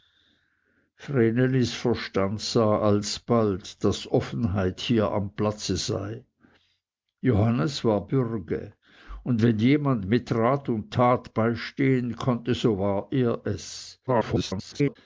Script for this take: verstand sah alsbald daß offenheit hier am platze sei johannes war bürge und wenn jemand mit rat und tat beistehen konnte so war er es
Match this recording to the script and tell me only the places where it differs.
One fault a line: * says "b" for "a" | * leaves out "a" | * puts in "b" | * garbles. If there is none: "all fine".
* garbles